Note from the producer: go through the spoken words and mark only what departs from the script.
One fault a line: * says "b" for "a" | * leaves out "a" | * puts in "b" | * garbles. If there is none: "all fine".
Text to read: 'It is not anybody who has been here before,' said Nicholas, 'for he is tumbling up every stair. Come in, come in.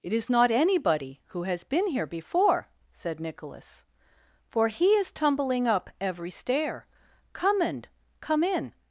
* says "and" for "in"